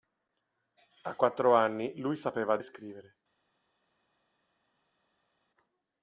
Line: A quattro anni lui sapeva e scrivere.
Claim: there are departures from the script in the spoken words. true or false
false